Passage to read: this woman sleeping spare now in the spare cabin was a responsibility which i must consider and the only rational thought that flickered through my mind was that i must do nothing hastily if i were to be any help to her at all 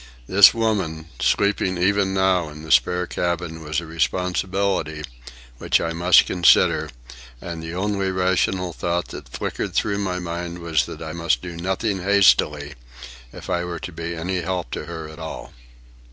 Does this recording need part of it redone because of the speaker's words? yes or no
yes